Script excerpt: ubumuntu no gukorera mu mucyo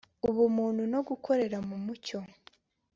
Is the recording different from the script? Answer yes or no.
no